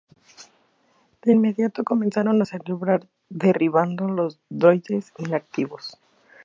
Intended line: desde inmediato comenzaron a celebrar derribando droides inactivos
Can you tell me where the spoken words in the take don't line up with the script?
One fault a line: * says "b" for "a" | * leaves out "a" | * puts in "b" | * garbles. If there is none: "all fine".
* says "de" for "desde"
* puts in "los"